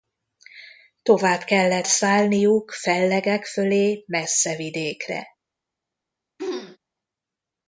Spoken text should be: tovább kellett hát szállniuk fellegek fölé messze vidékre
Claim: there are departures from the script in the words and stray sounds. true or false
true